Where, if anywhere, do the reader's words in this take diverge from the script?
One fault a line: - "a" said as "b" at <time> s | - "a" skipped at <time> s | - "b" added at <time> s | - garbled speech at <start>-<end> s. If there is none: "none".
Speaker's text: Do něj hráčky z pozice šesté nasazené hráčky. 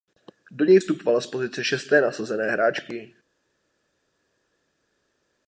- "hráčky" said as "vstupovala" at 0.8 s